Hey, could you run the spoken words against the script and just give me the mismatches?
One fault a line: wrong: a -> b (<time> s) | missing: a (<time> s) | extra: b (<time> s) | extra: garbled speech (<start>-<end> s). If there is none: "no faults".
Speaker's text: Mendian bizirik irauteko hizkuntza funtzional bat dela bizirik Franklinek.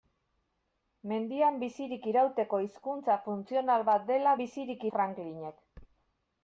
no faults